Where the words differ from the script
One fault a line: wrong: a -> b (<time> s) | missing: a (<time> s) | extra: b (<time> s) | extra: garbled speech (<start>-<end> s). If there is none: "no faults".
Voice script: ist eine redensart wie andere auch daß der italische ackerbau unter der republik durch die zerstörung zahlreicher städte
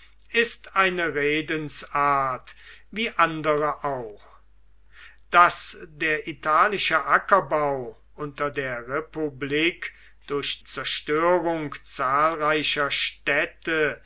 missing: die (10.6 s)